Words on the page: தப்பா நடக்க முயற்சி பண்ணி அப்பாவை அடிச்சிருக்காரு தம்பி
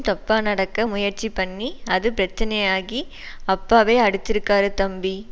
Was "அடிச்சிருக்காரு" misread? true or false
false